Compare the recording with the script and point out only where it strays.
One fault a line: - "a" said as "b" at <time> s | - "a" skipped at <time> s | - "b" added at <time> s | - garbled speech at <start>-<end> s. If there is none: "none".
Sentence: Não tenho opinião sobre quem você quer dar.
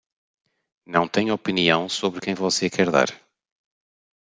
none